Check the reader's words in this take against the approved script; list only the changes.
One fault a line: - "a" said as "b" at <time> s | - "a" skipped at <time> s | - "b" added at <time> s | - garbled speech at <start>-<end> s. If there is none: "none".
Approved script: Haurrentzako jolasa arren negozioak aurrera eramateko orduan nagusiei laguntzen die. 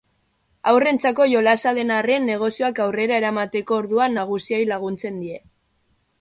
- "den" added at 1.8 s